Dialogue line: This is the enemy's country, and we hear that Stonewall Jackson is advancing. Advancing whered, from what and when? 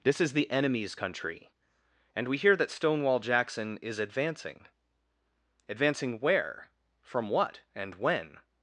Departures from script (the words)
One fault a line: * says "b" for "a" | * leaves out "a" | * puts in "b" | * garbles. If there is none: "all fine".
* says "where" for "whered"